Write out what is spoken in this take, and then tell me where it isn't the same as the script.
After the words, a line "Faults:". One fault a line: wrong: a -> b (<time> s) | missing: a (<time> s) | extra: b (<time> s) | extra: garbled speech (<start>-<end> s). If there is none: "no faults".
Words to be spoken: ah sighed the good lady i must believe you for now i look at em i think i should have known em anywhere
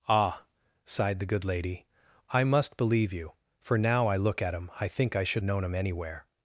ah sighed the good lady i must believe you for now i look at em i think i should known em anywhere
Faults:
missing: have (5.4 s)